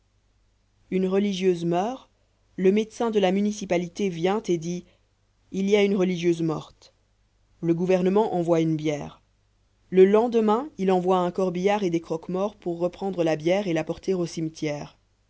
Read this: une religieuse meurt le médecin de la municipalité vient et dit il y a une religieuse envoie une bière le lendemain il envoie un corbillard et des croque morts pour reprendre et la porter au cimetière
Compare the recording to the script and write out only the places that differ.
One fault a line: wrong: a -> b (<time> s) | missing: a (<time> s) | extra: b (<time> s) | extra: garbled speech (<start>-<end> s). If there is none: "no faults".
extra: morte le gouvernement (6.4 s)
extra: la bière (13.2 s)